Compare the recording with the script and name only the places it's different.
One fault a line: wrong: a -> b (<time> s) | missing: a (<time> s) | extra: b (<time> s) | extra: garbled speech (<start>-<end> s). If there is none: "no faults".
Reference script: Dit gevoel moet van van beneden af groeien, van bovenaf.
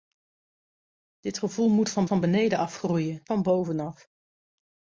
no faults